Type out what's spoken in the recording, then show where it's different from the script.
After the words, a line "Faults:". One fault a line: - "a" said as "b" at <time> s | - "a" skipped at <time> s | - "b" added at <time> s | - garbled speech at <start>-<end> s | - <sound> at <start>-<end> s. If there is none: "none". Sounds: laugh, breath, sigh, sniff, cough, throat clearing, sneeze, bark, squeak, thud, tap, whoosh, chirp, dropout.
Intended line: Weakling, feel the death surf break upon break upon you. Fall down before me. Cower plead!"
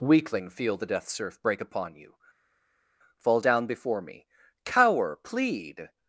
Weakling, feel the death surf break upon you. Fall down before me. Cower plead!"
Faults:
- "break upon" skipped at 2.0 s